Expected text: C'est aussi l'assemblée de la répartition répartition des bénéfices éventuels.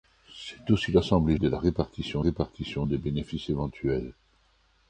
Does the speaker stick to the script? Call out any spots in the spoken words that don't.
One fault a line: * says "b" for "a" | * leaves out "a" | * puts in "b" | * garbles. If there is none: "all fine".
all fine